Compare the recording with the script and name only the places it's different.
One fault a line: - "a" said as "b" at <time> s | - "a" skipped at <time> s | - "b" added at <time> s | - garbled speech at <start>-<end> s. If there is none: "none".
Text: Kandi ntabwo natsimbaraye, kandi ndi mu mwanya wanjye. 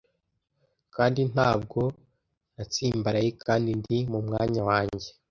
none